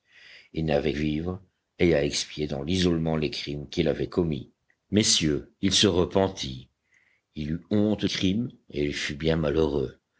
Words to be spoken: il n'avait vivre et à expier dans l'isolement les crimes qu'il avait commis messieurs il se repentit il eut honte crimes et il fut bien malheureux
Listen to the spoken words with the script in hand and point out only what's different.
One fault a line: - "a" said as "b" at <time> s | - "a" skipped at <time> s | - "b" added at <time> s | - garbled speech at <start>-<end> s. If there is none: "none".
none